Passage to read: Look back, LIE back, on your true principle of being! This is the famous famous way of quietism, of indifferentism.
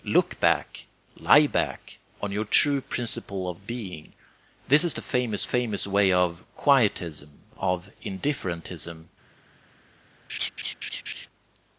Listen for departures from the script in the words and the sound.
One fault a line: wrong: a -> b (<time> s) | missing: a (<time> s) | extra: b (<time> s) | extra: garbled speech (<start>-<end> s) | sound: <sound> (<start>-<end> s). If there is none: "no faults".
sound: laugh (10.3-11.3 s)